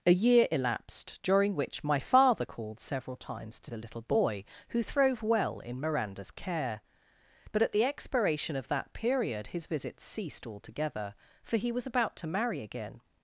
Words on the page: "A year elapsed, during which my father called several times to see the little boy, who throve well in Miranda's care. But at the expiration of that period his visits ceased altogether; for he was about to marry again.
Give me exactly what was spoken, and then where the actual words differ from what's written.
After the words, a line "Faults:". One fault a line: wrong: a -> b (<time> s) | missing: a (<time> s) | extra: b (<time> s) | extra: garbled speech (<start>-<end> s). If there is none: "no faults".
"A year elapsed, during which my father called several times to the little boy, who throve well in Miranda's care. But at the expiration of that period his visits ceased altogether; for he was about to marry again.
Faults:
missing: see (3.7 s)